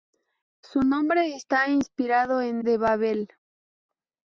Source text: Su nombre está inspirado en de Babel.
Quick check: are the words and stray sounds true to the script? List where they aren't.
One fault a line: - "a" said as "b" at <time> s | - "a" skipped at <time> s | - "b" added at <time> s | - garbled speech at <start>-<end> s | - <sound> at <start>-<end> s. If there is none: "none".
none